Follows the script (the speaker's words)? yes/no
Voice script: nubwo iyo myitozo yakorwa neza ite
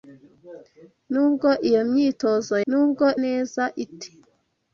no